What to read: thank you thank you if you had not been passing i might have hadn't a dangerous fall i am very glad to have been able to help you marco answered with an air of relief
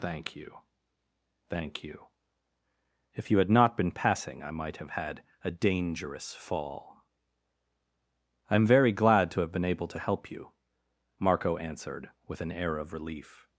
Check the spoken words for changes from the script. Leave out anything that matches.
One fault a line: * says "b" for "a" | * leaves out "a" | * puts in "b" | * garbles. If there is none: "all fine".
* says "had" for "hadn't"